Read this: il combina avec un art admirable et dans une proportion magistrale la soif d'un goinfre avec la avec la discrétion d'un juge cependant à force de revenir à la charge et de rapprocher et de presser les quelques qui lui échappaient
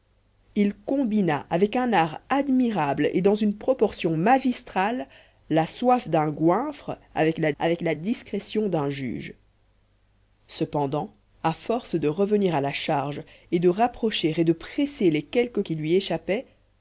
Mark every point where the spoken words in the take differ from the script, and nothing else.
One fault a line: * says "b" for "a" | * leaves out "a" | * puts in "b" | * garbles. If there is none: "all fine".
all fine